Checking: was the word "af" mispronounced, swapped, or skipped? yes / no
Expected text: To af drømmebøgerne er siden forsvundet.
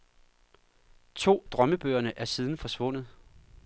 yes